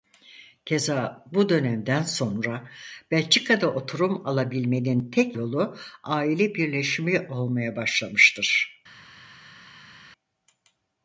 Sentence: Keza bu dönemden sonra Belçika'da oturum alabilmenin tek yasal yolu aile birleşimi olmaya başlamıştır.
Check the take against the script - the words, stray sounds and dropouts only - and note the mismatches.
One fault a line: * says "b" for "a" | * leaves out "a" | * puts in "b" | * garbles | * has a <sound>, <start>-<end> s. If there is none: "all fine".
* leaves out "yasal"